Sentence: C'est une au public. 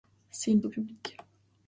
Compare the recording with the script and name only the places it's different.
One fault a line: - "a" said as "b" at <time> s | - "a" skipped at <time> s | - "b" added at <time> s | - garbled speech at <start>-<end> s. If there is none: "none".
none